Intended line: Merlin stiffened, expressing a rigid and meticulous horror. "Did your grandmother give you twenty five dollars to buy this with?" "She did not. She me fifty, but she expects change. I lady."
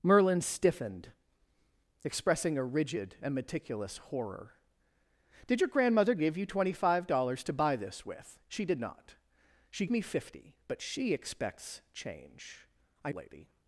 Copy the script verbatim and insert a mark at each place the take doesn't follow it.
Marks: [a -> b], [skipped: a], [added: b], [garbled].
Merlin stiffened, expressing a rigid and meticulous horror. "Did your grandmother give you twenty five dollars to buy this with?" "She did not. She me fifty, but she expects change. I lady."